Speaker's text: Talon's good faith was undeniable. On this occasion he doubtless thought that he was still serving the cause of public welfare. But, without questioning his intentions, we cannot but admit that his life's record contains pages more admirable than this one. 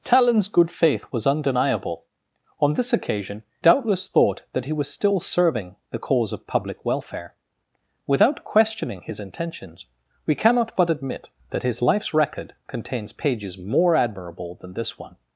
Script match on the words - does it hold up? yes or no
no